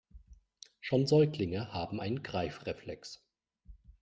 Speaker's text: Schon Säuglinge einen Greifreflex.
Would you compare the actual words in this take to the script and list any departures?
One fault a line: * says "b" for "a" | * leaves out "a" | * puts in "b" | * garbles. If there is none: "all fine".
* puts in "haben"